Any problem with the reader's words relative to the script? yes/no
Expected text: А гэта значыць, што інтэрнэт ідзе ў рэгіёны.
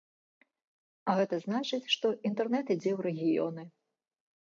no